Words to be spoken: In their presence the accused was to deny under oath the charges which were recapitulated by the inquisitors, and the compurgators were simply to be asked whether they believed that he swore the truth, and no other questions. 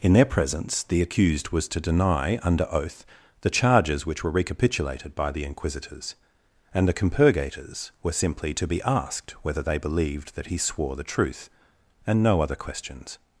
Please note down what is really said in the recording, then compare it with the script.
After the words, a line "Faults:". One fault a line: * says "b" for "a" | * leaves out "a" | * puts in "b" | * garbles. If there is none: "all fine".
In their presence the accused was to deny under oath the charges which were recapitulated by the inquisitors, and the compurgators were simply to be asked whether they believed that he swore the truth, and no other questions.
Faults:
all fine